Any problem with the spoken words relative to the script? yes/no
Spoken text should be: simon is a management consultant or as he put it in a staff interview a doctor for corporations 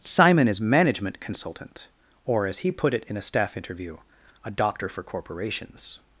yes